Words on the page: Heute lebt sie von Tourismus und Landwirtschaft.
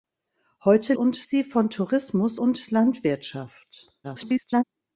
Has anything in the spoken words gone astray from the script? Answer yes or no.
yes